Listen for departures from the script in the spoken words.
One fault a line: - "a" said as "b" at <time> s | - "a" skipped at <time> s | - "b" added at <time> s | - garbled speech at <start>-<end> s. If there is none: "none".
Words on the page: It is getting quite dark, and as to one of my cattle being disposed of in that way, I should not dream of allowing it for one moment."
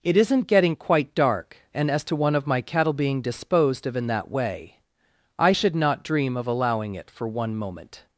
- "is" said as "isn't" at 0.2 s